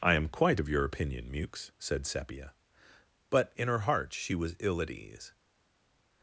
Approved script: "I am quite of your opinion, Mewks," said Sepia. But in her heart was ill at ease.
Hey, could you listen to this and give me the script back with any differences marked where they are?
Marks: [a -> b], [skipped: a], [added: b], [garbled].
"I am quite of your opinion, Mewks," said Sepia. But in her heart [added: she] was ill at ease.